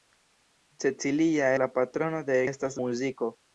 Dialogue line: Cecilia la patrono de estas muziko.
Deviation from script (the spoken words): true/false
false